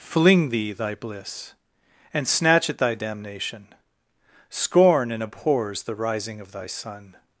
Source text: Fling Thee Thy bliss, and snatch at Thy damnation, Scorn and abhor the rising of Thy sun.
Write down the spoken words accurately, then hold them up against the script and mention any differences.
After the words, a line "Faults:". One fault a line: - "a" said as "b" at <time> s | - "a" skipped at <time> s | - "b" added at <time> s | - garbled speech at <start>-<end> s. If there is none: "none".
Fling Thee Thy bliss, and snatch at Thy damnation, Scorn and abhors the rising of Thy sun.
Faults:
- "abhor" said as "abhors" at 5.2 s